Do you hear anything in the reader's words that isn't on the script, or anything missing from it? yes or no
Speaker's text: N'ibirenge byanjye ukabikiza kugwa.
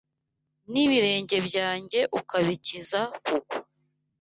no